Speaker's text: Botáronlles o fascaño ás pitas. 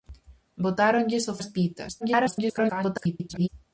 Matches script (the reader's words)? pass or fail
fail